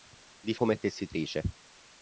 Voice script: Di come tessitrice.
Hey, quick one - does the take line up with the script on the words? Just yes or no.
yes